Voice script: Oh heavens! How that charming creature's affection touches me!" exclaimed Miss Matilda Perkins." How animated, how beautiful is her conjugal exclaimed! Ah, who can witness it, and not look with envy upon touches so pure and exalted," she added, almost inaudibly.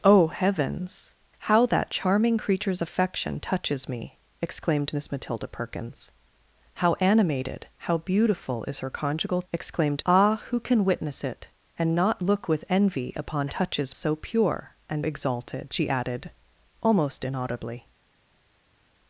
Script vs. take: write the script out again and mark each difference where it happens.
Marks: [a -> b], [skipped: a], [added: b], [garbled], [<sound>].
Oh heavens! How that charming creature's affection touches me!" exclaimed Miss Matilda Perkins." How animated, how beautiful is her conjugal exclaimed! Ah, who can witness it, and not look with envy upon touches so pure and exalted," she added, almost inaudibly.